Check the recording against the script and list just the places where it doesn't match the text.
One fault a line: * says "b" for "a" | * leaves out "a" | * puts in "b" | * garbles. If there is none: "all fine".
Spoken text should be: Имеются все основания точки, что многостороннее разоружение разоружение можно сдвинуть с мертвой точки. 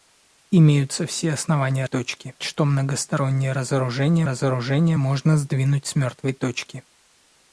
all fine